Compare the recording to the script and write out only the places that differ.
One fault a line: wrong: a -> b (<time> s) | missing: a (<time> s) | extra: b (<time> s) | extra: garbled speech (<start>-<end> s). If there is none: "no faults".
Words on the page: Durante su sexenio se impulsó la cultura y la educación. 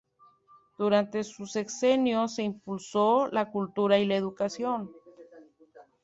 no faults